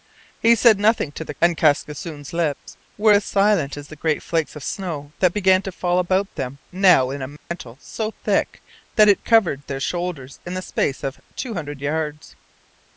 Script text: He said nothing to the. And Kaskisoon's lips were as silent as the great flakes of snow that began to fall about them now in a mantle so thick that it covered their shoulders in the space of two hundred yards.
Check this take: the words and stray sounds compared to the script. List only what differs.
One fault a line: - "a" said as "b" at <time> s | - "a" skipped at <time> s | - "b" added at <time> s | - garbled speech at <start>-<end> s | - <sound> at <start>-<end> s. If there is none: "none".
- dropout at 7.4-7.5 s